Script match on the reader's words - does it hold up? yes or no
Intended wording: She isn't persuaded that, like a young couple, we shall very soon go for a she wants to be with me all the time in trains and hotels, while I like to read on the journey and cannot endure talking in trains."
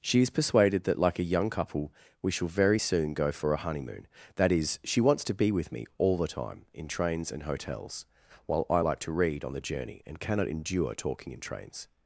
no